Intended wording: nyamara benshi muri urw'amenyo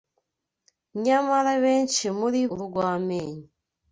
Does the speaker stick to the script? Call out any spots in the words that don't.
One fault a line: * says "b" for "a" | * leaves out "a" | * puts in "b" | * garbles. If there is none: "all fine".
all fine